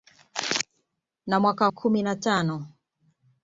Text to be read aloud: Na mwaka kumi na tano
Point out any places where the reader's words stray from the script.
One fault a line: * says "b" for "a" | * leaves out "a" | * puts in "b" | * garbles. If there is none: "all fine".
all fine